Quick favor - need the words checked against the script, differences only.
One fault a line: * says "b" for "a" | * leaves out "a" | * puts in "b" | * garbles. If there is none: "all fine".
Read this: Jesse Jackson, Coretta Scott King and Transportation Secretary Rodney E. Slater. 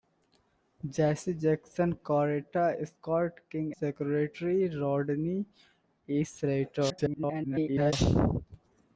* leaves out "and Transportation"
* garbles